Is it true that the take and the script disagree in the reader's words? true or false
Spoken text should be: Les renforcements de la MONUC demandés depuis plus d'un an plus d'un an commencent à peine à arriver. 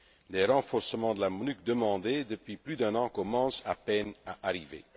true